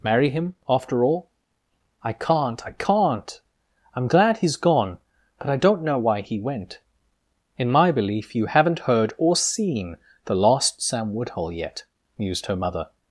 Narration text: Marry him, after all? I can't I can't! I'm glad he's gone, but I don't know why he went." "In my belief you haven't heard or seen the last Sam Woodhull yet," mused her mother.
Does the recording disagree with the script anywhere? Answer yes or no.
no